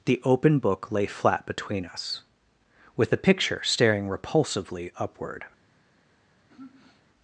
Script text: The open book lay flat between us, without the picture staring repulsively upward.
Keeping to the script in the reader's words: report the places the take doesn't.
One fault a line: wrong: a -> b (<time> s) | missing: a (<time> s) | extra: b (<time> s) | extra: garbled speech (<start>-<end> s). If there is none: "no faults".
wrong: without -> with (3.0 s)